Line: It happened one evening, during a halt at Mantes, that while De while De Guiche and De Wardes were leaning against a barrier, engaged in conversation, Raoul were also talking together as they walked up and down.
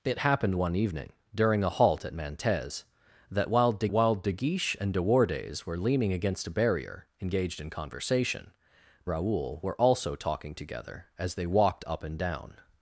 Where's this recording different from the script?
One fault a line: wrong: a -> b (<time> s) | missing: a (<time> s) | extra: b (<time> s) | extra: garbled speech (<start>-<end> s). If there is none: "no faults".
no faults